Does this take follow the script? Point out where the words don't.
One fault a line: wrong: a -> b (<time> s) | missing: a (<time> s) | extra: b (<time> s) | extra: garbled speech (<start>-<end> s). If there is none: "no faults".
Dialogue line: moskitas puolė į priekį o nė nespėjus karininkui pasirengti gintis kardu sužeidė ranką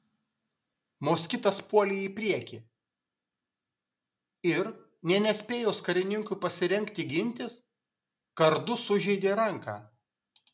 wrong: o -> ir (4.5 s)